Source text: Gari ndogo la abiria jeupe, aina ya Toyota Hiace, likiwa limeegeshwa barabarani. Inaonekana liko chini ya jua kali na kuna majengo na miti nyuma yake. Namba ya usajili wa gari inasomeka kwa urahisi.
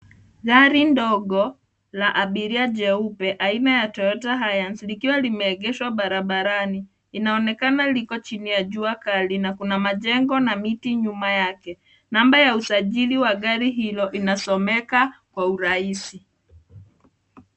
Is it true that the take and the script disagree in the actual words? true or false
true